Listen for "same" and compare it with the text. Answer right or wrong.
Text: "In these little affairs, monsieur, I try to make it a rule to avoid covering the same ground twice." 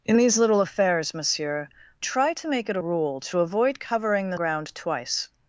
wrong